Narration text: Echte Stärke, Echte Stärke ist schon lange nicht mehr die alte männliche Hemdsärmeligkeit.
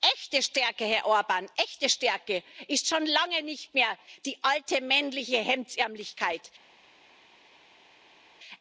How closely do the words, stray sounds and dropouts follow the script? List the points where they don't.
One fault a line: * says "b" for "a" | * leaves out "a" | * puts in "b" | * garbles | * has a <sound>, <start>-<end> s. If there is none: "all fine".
* puts in "Herr Orbán"